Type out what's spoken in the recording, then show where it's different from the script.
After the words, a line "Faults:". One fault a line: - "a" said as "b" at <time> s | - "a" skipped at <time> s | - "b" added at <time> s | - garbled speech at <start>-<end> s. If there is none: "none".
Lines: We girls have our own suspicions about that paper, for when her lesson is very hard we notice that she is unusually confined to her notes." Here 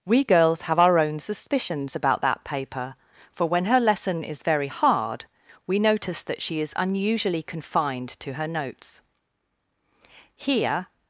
We girls have our own suspicions about that paper, for when her lesson is very hard we notice that she is unusually confined to her notes." Here
Faults:
none